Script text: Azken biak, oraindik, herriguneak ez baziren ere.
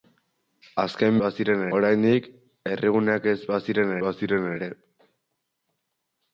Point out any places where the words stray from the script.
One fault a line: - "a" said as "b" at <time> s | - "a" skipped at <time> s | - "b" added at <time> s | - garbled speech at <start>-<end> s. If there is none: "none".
- "biak" said as "baziren" at 1.2 s
- "baziren" added at 4.1 s